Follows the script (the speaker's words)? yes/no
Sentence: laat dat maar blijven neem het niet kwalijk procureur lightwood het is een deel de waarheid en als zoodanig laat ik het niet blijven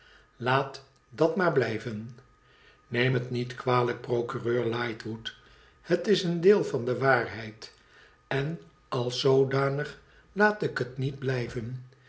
no